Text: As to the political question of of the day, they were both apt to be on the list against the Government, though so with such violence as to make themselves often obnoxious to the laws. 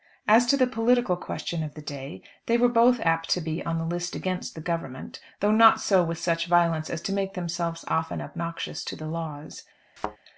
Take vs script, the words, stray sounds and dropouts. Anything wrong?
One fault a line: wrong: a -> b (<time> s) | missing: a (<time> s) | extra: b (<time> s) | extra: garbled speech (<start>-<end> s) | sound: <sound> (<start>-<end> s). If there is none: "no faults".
missing: of (1.8 s)
extra: not (5.5 s)
sound: thud (10.0-10.2 s)